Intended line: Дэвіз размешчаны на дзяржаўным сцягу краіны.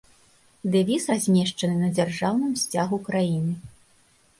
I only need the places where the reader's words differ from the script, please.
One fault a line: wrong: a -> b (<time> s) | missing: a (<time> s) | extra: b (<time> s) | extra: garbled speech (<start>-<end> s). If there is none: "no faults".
no faults